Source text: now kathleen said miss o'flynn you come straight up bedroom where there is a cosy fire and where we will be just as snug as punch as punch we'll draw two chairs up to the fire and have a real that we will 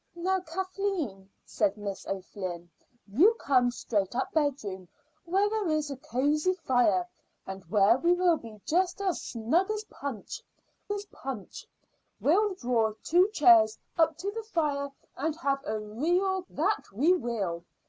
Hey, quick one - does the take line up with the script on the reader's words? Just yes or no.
yes